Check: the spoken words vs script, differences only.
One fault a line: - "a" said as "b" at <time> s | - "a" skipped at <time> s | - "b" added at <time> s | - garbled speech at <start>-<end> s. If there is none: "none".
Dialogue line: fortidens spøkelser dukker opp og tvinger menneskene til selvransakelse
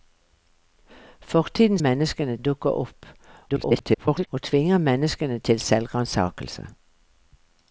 - "spøkelser" said as "menneskene" at 1.8 s
- garbled speech at 3.5-4.3 s